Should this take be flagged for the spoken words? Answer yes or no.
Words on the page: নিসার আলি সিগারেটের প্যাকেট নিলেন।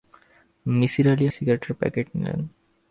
no